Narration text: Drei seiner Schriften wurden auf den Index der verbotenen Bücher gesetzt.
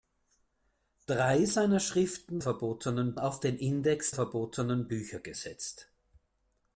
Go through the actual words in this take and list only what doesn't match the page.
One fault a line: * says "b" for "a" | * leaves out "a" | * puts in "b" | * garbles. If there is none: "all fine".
* says "verbotenen" for "wurden"
* leaves out "der"